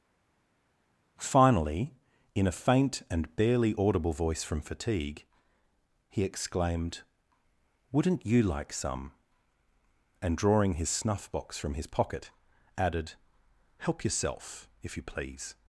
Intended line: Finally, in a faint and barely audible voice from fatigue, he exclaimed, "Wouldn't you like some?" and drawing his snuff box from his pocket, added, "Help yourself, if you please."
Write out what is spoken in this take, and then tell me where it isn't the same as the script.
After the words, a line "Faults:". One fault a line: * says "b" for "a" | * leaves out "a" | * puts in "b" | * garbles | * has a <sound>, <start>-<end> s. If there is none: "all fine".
Finally, in a faint and barely audible voice from fatigue, he exclaimed, "Wouldn't you like some?" and drawing his snuff box from his pocket, added, "Help yourself, if you please."
Faults:
all fine